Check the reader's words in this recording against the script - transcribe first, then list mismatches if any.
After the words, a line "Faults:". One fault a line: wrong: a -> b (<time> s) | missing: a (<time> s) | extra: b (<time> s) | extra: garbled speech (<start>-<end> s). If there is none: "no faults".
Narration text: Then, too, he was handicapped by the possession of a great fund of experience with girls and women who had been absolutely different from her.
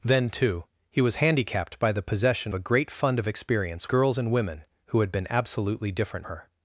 Then, too, he was handicapped by the possession a great fund of experience girls and women who had been absolutely different her.
Faults:
missing: of (2.5 s)
missing: with (3.9 s)
missing: from (6.3 s)